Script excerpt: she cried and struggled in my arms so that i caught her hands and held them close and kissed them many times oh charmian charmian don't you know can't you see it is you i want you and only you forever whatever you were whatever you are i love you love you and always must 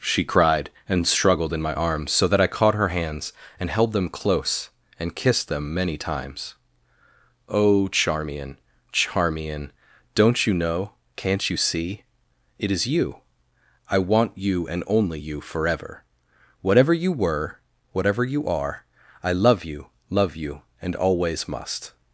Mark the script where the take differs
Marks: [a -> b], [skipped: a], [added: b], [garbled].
she cried and struggled in my arms so that i caught her hands and held them close and kissed them many times oh charmian charmian don't you know can't you see it is you i want you and only you forever whatever you were whatever you are i love you love you and always must